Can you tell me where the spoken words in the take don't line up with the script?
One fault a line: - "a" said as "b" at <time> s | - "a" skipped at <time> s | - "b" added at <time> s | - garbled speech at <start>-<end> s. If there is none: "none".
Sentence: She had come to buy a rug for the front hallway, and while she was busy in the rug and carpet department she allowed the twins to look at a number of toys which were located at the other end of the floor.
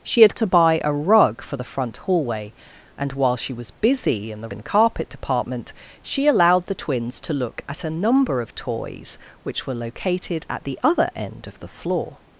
- "come" skipped at 0.3 s
- "rug" skipped at 4.5 s